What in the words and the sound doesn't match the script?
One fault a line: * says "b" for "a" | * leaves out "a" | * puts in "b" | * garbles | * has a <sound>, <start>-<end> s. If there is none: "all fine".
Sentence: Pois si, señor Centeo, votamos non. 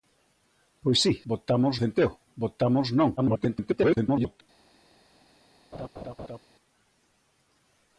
* says "votamos" for "señor"
* garbles
* has a laugh, 5.7-6.4 s